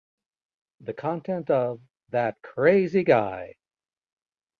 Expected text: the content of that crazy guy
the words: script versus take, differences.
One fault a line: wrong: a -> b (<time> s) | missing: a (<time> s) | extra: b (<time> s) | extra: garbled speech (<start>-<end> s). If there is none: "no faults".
no faults